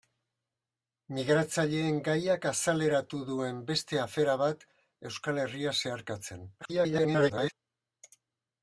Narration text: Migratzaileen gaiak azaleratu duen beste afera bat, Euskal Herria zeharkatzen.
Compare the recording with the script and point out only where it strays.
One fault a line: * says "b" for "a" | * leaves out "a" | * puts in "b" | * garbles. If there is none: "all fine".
* garbles